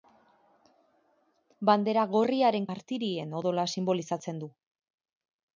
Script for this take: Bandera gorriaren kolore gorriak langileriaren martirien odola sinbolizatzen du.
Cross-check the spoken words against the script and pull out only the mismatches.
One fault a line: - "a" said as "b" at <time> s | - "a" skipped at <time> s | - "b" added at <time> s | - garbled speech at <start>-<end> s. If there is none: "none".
- "kolore gorriak langileriaren" skipped at 2.6 s